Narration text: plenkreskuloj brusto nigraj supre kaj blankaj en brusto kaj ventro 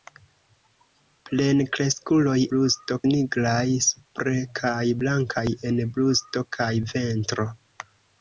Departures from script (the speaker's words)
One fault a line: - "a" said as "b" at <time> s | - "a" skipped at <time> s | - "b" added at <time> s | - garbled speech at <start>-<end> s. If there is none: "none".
none